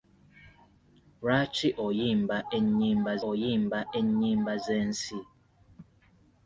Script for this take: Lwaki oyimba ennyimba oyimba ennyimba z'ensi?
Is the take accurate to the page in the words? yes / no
yes